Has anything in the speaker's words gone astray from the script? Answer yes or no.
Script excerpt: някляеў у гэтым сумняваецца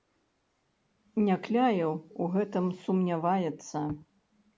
no